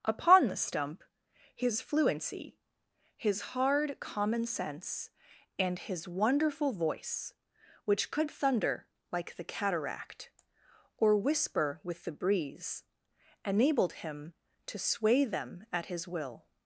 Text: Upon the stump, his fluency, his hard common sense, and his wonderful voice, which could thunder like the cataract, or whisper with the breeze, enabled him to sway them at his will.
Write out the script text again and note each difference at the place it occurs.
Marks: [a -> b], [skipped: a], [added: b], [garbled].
Upon the stump, his fluency, his hard common sense, and his wonderful voice, which could thunder like the cataract, or whisper with the breeze, enabled him to sway them at his will.